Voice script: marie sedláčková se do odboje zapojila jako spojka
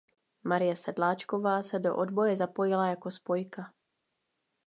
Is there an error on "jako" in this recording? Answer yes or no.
no